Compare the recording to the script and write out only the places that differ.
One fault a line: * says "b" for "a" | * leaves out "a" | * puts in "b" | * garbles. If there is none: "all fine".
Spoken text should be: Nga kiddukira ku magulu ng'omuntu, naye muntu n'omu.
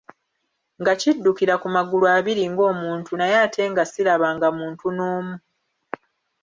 * puts in "abiri"
* puts in "ate nga sirabanga"